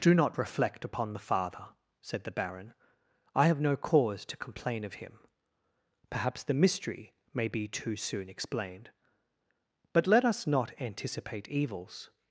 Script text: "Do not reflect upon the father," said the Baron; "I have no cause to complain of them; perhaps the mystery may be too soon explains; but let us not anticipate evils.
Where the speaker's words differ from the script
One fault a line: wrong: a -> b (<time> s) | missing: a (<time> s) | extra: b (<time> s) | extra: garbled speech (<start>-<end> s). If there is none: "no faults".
wrong: them -> him (5.0 s)
wrong: explains -> explained (8.3 s)